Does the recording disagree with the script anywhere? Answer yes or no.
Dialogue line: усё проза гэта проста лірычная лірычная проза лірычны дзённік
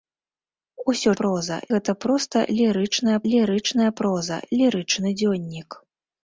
no